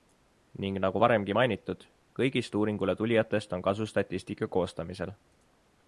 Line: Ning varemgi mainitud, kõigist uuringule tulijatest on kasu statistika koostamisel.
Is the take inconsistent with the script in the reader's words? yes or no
yes